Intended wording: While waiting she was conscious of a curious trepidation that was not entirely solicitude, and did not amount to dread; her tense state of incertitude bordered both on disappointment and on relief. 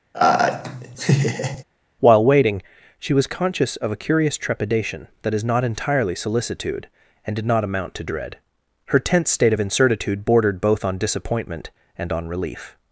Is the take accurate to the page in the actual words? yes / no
no